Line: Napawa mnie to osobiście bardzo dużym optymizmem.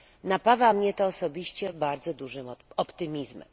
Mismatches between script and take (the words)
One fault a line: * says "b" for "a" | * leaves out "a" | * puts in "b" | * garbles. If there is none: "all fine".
all fine